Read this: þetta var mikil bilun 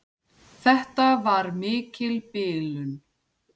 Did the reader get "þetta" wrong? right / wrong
right